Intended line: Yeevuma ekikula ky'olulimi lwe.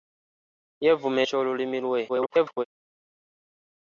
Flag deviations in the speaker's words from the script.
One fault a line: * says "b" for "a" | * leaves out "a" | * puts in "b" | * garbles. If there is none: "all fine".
* leaves out "ekikula"
* garbles